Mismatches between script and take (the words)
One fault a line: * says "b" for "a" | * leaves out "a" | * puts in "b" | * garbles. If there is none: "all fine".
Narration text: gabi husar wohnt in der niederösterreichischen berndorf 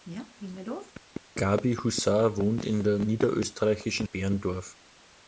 all fine